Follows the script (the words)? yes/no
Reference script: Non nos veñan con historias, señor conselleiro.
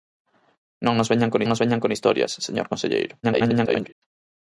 no